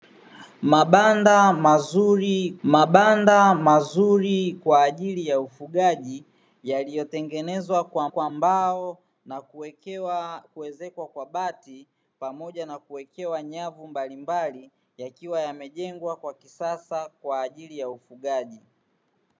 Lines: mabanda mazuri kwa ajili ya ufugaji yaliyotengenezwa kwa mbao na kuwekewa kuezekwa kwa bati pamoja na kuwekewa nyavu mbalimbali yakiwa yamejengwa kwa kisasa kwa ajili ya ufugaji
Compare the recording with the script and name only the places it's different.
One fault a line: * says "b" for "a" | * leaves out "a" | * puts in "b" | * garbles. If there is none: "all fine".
* puts in "mabanda mazuri"
* puts in "kwa"